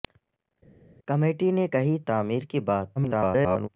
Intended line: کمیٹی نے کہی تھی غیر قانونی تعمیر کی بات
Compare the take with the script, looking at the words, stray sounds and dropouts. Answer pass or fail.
fail